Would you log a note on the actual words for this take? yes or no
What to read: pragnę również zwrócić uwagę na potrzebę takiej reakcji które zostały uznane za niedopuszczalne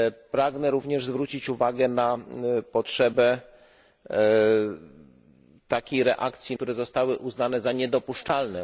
no